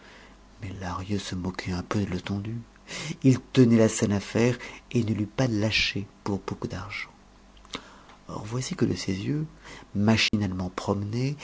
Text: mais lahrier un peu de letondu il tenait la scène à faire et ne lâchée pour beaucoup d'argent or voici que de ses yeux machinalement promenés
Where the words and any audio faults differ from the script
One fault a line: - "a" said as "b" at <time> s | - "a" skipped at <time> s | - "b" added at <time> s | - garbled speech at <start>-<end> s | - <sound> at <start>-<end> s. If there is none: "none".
- "se moquait" added at 1.2 s
- "l'eût pas" added at 5.1 s
- dropout at 10.3-10.3 s